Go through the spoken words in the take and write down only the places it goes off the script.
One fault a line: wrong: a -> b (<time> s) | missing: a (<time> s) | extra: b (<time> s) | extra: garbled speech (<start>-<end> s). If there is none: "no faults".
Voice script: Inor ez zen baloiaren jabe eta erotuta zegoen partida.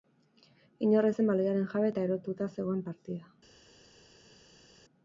no faults